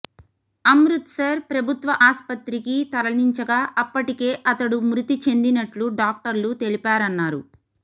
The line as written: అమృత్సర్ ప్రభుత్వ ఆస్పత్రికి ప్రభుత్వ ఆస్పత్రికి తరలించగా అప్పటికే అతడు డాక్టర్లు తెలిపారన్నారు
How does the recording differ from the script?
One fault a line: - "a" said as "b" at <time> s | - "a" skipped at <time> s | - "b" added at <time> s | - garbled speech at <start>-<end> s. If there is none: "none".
- "ప్రభుత్వ ఆస్పత్రికి" skipped at 2.7 s
- "మృతి చెందినట్లు" added at 4.9 s